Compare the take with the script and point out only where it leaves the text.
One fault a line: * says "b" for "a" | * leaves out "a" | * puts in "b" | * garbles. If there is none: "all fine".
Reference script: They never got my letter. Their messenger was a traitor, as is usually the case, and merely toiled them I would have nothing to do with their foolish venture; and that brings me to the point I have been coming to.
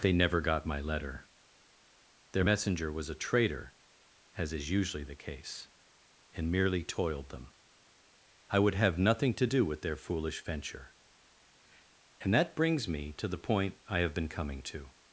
all fine